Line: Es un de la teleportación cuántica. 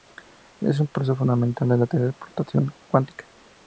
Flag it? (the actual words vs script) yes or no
yes